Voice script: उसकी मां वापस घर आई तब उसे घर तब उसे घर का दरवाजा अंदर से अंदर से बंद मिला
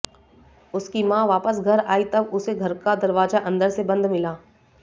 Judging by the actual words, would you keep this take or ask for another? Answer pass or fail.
fail